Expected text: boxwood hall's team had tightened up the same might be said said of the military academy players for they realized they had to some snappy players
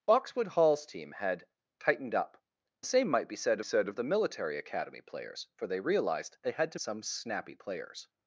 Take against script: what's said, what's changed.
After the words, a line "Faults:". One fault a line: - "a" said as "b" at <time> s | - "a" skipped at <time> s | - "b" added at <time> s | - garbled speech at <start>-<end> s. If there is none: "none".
boxwood hall's team had tightened up the same might be said said of the military academy players for they realized they had to some snappy players
Faults:
none